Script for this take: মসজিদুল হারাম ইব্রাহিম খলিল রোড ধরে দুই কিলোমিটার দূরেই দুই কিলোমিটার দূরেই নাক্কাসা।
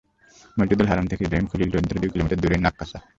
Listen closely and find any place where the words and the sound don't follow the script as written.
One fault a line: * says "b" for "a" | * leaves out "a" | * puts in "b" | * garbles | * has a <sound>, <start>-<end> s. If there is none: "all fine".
* puts in "থেকে"
* leaves out "দুই কিলোমিটার দূরেই"